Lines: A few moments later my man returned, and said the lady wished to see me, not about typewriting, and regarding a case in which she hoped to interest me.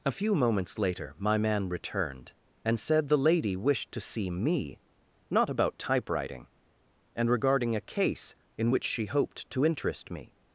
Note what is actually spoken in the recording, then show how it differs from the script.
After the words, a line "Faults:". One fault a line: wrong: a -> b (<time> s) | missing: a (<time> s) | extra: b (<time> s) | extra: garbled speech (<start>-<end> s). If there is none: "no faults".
A few moments later my man returned, and said the lady wished to see me, not about typewriting, and regarding a case in which she hoped to interest me.
Faults:
no faults